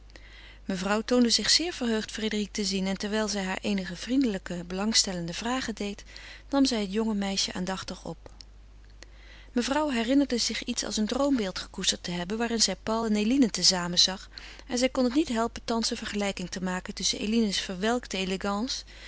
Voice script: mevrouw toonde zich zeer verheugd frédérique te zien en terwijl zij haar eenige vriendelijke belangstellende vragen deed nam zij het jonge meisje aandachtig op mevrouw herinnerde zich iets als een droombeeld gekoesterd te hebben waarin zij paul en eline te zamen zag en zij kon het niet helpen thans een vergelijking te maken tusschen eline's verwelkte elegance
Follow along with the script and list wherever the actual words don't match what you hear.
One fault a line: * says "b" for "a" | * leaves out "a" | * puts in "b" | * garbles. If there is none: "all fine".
all fine